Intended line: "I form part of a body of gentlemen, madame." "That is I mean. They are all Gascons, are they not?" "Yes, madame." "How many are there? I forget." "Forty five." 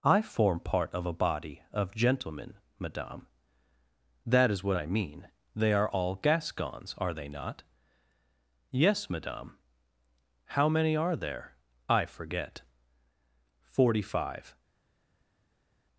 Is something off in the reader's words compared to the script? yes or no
yes